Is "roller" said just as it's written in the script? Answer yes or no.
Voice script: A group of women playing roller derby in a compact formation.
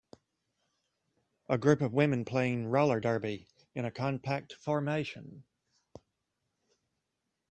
yes